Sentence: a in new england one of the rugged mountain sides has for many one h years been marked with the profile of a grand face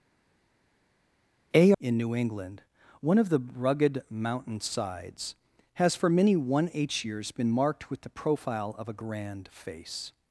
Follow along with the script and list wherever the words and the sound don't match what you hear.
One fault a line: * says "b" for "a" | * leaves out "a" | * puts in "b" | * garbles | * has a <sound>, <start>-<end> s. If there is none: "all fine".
all fine